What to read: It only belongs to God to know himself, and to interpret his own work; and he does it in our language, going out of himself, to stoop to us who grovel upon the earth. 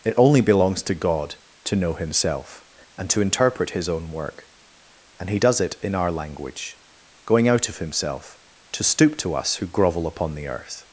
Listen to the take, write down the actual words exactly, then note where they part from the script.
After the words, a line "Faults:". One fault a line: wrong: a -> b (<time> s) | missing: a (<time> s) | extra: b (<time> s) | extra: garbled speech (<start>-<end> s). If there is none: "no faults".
It only belongs to God to know himself, and to interpret his own work; and he does it in our language, going out of himself, to stoop to us who grovel upon the earth.
Faults:
no faults